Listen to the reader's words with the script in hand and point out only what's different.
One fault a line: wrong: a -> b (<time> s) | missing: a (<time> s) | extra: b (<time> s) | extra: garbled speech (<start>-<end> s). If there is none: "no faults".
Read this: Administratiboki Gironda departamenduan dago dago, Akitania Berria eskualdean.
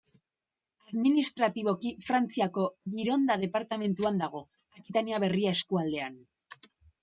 extra: Frantziako (2.1 s)
missing: dago (4.5 s)